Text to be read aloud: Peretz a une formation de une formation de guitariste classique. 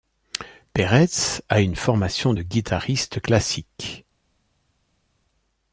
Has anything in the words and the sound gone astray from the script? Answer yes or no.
yes